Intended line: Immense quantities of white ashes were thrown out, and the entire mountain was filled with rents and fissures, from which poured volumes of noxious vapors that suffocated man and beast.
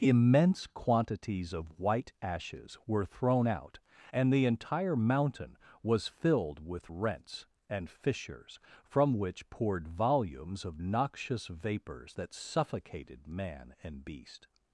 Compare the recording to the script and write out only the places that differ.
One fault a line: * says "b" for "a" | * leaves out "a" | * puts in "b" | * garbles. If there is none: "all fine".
all fine